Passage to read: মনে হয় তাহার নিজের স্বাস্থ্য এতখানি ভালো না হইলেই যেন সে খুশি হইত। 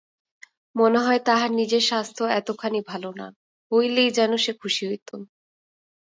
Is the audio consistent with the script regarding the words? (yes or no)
yes